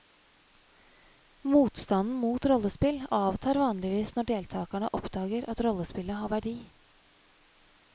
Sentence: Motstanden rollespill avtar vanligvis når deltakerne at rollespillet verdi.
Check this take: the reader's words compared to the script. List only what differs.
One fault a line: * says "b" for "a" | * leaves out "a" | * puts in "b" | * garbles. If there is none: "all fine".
* puts in "mot"
* puts in "oppdager"
* puts in "har"